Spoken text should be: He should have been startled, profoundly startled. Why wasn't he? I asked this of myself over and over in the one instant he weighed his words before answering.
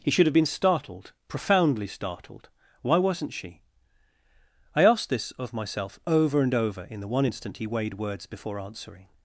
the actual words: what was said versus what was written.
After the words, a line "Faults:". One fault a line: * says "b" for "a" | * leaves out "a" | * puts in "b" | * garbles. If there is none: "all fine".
He should have been startled, profoundly startled. Why wasn't she? I asked this of myself over and over in the one instant he weighed words before answering.
Faults:
* says "she" for "he"
* leaves out "his"